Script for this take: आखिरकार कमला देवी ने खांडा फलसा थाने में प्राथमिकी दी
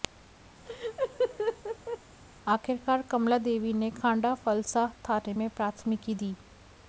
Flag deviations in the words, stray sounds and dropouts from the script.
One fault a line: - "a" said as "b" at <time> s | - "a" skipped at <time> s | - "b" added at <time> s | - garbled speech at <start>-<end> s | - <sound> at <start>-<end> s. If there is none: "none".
- laugh at 0.7-2.0 s